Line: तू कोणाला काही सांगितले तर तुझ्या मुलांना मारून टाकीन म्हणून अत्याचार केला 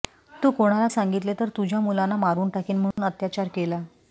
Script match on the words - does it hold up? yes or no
no